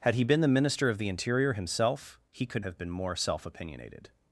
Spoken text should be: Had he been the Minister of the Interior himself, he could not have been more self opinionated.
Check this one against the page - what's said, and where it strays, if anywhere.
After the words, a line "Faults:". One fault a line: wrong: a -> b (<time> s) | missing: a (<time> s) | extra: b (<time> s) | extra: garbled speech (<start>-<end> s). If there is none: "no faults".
Had he been the Minister of the Interior himself, he could have been more self opinionated.
Faults:
missing: not (2.6 s)